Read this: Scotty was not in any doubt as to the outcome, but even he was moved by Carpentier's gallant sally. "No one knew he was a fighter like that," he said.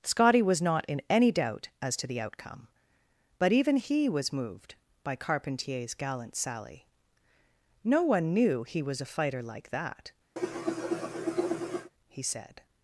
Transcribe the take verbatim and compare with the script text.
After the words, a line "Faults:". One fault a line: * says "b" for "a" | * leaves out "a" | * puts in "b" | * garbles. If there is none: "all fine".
Scotty was not in any doubt as to the outcome, but even he was moved by Carpentier's gallant sally. "No one knew he was a fighter like that," he said.
Faults:
all fine